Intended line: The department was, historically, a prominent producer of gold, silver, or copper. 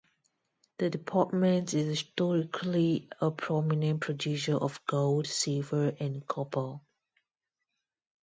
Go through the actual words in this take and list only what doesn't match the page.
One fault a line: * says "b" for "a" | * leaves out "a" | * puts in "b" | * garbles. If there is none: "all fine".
* says "is" for "was"
* says "and" for "or"